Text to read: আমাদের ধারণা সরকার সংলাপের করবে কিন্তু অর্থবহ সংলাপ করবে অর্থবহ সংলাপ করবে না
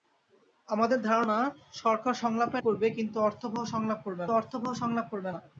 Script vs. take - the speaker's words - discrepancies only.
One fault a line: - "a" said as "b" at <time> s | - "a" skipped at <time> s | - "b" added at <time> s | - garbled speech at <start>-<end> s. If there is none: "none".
none